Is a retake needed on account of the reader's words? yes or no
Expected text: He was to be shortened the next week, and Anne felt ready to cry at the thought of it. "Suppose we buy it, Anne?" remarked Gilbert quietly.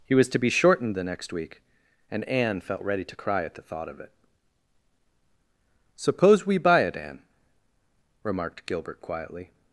no